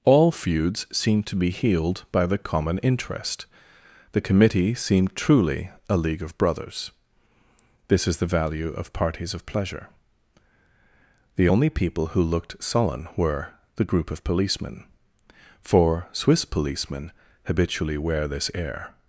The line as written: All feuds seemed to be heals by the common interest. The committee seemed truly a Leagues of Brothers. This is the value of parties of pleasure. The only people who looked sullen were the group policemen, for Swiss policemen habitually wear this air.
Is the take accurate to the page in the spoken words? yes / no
no